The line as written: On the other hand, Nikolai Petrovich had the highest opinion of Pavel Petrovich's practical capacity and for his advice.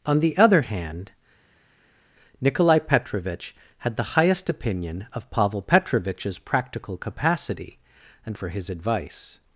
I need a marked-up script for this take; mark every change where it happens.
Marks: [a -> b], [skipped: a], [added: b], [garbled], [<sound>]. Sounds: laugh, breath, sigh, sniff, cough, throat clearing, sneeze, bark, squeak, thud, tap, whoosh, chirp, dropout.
On the other hand, Nikolai Petrovich had the highest opinion of Pavel Petrovich's practical capacity and for his advice.